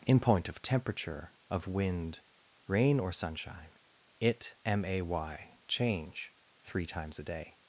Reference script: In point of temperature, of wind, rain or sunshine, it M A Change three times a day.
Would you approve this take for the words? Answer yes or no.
no